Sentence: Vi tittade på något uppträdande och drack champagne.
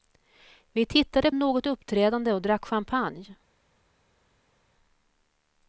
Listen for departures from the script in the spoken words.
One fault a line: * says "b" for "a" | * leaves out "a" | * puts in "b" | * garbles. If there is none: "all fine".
* leaves out "på"